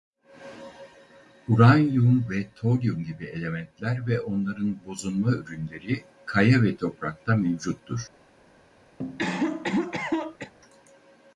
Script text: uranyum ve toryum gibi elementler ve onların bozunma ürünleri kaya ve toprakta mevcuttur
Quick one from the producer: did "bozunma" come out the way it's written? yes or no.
yes